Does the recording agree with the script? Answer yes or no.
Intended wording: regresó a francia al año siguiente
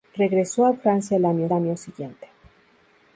no